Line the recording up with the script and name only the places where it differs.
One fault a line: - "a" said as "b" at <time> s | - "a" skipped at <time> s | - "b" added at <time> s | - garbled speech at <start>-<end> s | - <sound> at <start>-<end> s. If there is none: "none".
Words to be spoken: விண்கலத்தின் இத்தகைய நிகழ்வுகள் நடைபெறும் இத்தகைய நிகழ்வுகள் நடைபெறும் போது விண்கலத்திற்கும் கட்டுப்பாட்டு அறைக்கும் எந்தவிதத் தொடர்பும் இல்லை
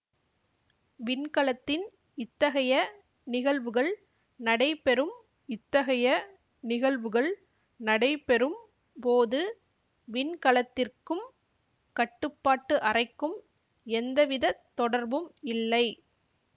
none